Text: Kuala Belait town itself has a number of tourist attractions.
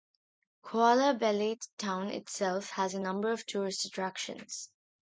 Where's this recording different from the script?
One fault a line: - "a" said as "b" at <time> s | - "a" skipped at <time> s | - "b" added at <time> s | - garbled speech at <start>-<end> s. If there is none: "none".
none